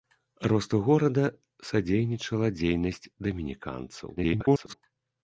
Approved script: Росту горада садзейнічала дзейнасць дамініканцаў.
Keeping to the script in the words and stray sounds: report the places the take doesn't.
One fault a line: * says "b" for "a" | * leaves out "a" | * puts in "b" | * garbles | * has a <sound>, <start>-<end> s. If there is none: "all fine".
* garbles